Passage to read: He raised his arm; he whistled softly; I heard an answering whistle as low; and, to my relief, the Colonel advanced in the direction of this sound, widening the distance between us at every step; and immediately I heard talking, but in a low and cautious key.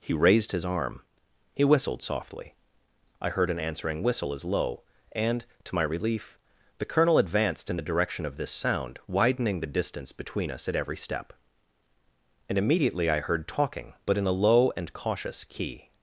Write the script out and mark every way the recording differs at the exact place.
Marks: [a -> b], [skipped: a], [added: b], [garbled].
He raised his arm; he whistled softly; I heard an answering whistle as low; and, to my relief, the Colonel advanced in the direction of this sound, widening the distance between us at every step; and immediately I heard talking, but in a low and cautious key.